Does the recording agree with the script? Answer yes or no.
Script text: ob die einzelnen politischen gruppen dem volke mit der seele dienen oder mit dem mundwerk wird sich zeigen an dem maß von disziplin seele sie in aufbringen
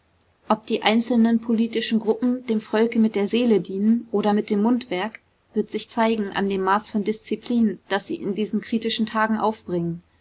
no